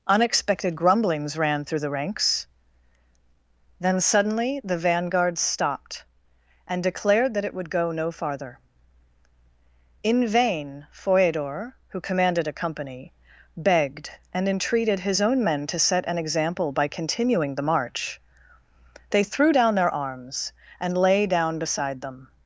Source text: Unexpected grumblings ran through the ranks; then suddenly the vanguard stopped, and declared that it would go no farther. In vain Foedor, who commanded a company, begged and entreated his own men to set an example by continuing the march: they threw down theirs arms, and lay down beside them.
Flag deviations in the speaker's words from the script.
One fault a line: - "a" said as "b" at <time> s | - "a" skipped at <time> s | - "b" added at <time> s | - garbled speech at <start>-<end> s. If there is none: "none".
- "theirs" said as "their" at 19.7 s